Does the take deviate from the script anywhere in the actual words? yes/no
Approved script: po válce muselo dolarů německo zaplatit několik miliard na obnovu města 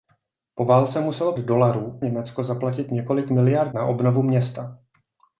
no